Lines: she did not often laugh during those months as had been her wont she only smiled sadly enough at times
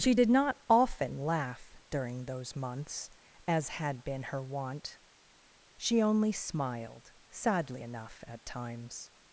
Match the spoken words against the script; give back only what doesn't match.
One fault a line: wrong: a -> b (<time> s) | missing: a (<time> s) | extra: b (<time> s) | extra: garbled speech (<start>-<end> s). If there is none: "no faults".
no faults